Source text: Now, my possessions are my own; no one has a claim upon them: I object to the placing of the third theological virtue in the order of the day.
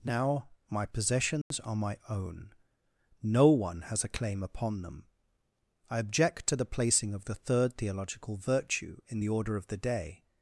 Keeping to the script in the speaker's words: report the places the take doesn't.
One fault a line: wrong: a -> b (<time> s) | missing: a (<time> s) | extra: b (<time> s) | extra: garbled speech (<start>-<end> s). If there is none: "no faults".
no faults